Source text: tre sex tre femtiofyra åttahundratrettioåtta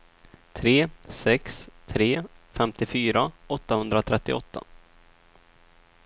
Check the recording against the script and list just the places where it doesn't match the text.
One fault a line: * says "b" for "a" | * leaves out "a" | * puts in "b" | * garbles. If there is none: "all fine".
all fine